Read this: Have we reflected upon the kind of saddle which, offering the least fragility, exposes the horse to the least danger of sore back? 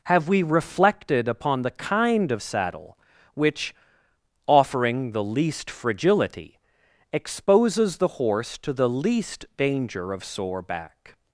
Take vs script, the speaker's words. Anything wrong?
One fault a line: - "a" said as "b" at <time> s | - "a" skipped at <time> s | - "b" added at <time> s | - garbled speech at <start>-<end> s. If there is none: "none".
none